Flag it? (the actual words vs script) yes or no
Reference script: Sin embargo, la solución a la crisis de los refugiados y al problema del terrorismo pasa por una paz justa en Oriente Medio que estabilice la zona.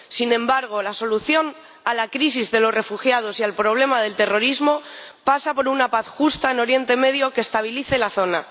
no